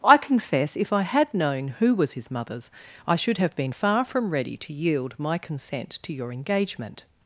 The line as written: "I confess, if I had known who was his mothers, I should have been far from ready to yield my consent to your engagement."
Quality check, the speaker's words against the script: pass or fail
pass